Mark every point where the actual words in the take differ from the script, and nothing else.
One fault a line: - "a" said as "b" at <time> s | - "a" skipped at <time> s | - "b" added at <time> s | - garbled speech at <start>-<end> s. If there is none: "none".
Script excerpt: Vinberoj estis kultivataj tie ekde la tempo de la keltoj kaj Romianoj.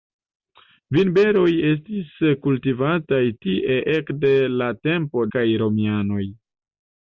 - "de la keltoj" skipped at 5.2 s